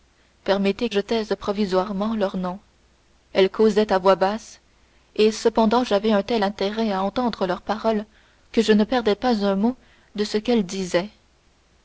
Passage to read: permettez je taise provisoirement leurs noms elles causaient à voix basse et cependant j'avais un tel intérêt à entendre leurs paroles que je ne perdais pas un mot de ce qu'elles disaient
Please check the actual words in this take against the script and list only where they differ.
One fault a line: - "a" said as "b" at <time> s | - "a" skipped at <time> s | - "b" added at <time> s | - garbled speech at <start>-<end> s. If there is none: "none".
none